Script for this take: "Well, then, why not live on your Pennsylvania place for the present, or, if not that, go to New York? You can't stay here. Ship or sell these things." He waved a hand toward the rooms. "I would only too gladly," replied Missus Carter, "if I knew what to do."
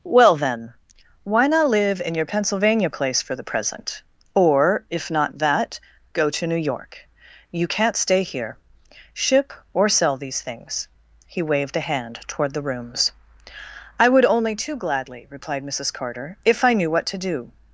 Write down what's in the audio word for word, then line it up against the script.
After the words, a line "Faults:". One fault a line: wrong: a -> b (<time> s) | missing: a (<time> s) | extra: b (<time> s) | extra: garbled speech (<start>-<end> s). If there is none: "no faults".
"Well, then, why not live in your Pennsylvania place for the present, or, if not that, go to New York? You can't stay here. Ship or sell these things." He waved a hand toward the rooms. "I would only too gladly," replied Missus Carter, "if I knew what to do."
Faults:
wrong: on -> in (2.0 s)